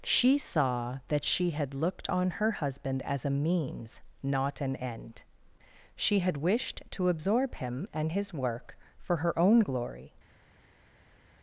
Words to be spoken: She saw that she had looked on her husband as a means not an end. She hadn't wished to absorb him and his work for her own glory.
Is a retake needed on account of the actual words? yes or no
yes